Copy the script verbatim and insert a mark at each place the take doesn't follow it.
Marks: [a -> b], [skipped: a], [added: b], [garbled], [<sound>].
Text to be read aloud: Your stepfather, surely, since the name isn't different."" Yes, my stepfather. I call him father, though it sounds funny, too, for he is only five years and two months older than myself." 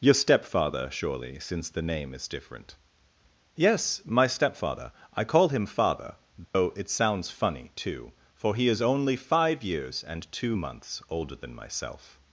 Your stepfather, surely, since the name [isn't -> is] different."" Yes, my stepfather. I call him father, though [dropout] it sounds funny, too, for he is only five years and two months older than myself."